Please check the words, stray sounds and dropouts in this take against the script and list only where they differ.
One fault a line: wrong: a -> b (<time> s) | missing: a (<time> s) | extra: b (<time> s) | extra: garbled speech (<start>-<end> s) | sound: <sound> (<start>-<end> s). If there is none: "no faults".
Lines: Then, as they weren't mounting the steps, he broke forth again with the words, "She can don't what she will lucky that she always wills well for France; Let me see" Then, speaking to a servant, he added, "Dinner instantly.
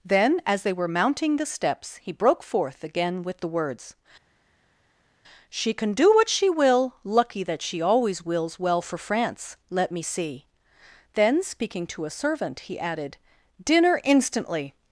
wrong: weren't -> were (0.7 s)
wrong: don't -> do (5.9 s)